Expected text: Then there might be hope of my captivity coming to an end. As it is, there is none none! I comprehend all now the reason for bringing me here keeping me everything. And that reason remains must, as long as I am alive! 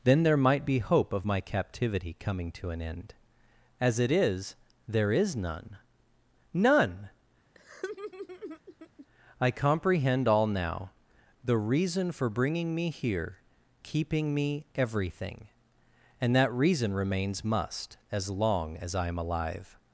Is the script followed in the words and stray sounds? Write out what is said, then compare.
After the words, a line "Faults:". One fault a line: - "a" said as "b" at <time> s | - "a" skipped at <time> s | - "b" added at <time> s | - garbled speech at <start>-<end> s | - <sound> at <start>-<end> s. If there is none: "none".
Then there might be hope of my captivity coming to an end. As it is, there is none none! I comprehend all now the reason for bringing me here keeping me everything. And that reason remains must, as long as I am alive!
Faults:
- laugh at 7.5-9.1 s